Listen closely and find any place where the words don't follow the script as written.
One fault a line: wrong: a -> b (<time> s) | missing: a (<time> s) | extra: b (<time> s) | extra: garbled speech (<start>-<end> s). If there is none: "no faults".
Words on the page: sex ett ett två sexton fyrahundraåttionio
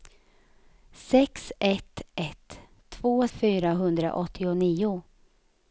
missing: sexton (3.3 s)